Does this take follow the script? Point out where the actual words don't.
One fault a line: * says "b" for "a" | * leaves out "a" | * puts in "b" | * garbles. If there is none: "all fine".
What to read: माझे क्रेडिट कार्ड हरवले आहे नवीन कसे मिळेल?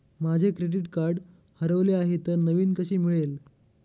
* puts in "तर"